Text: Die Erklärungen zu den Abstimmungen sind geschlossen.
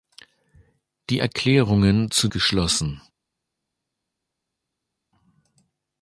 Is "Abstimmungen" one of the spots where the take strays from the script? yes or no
yes